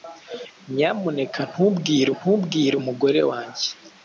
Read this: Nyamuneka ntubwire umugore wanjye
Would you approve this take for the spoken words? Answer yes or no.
no